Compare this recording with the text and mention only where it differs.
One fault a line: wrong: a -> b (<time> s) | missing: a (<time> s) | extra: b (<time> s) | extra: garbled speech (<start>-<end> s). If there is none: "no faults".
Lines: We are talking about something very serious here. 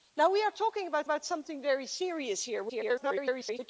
extra: about (1.0 s)
extra: garbled speech (2.7-3.6 s)